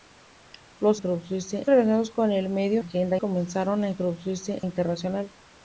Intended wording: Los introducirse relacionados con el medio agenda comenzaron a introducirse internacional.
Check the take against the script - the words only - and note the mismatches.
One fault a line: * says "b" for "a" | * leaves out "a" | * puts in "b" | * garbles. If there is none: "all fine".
all fine